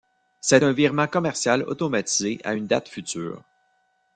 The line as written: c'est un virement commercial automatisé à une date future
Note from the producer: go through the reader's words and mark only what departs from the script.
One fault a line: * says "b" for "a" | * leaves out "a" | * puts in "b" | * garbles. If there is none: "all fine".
all fine